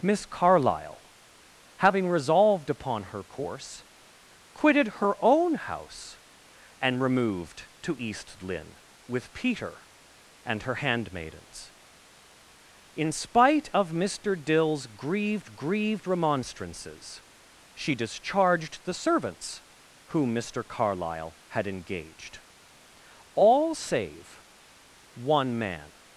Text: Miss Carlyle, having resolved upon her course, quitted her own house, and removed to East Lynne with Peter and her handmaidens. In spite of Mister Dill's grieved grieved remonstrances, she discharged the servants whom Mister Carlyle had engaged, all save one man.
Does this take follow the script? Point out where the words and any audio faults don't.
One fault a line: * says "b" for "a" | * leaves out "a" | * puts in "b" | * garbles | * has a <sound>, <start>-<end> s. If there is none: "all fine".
all fine